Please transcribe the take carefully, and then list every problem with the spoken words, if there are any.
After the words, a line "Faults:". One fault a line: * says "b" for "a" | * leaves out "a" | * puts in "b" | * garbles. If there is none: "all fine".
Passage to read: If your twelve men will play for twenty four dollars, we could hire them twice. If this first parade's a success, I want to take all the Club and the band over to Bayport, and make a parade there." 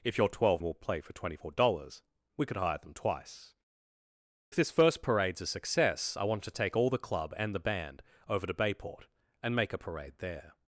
If your twelve will play for twenty four dollars, we could hire them twice. This first parade's a success, I want to take all the Club and the band over to Bayport, and make a parade there."
Faults:
* leaves out "men"
* leaves out "If"